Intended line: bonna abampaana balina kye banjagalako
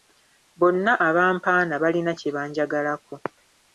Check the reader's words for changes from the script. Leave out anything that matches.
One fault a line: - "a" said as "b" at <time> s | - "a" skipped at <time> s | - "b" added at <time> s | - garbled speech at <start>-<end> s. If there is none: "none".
none